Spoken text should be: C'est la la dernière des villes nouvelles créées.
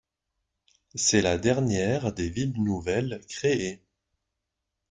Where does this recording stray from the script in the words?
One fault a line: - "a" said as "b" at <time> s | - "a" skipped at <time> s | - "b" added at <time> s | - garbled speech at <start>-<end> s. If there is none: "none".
- "la" skipped at 1.4 s